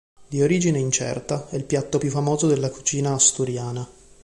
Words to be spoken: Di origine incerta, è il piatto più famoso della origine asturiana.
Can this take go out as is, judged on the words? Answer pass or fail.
fail